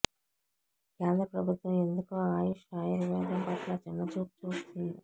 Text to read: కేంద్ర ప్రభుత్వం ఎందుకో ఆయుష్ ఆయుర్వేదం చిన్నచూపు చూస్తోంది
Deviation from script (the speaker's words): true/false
true